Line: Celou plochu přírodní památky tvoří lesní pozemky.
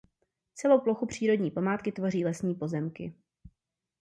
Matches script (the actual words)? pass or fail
pass